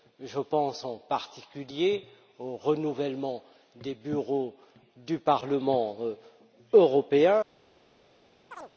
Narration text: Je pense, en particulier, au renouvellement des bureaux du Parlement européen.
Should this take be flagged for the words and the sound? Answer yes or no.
yes